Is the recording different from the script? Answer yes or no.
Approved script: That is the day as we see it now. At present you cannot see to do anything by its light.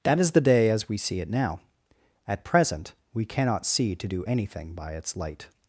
yes